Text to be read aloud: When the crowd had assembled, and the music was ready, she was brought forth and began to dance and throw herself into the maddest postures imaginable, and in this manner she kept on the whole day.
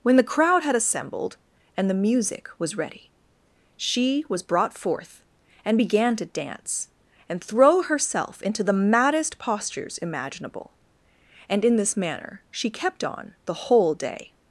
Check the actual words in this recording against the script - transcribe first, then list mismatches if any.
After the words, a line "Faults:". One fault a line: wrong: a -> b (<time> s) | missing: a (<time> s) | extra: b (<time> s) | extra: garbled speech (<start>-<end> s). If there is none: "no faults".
When the crowd had assembled, and the music was ready, she was brought forth and began to dance and throw herself into the maddest postures imaginable, and in this manner she kept on the whole day.
Faults:
no faults